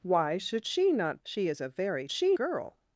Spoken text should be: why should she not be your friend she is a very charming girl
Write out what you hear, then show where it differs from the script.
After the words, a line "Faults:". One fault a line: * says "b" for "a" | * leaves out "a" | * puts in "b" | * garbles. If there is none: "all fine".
why should she not she is a very she girl
Faults:
* leaves out "be your friend"
* says "she" for "charming"